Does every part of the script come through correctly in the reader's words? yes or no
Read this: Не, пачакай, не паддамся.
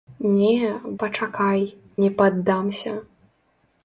yes